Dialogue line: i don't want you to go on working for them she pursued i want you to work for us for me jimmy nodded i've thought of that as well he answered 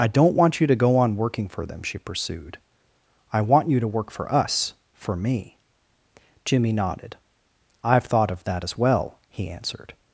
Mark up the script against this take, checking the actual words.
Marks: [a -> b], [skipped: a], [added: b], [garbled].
i don't want you to go on working for them she pursued i want you to work for us for me jimmy nodded i've thought of that as well he answered